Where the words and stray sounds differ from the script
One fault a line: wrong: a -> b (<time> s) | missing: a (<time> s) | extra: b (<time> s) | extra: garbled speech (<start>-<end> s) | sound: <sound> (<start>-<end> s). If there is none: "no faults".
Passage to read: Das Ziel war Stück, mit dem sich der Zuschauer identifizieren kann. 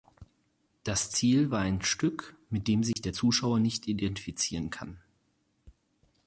extra: ein (1.6 s)
sound: dropout (2.9-3.0 s)
extra: nicht (3.6 s)